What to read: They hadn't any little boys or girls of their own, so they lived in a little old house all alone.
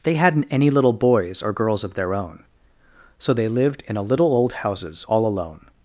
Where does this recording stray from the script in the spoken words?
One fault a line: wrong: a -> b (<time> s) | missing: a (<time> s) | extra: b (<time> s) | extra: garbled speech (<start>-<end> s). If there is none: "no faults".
wrong: house -> houses (4.5 s)